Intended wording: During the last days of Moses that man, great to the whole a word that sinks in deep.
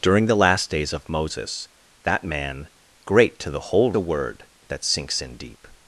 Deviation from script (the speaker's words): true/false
false